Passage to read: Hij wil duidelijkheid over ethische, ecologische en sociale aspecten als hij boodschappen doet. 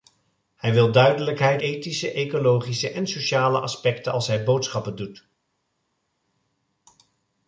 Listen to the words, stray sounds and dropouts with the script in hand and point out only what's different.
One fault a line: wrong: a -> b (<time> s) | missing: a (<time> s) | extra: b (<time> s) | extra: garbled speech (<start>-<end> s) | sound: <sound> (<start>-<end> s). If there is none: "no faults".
missing: over (1.6 s)